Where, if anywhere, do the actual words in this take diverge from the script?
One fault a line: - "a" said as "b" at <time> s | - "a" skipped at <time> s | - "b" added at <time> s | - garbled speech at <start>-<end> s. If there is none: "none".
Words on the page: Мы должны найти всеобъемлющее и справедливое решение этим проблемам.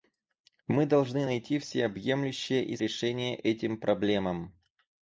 - "справедливое" skipped at 2.8 s